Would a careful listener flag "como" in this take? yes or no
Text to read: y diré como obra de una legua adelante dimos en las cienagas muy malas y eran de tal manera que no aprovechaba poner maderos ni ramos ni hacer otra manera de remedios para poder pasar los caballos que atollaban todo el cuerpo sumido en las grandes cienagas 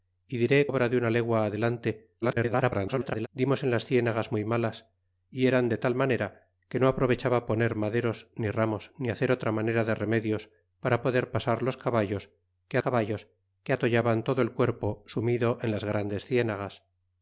yes